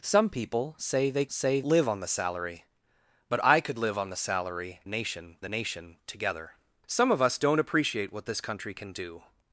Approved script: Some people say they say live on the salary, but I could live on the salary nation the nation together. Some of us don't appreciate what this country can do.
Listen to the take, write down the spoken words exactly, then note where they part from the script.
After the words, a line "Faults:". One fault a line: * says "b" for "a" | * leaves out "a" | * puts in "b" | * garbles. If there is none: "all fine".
Some people say they say live on the salary, but I could live on the salary nation the nation together. Some of us don't appreciate what this country can do.
Faults:
all fine